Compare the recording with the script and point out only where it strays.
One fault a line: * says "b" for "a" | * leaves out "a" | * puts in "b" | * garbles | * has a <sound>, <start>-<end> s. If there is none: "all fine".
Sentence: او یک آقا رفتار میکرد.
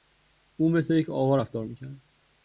* puts in "مثل"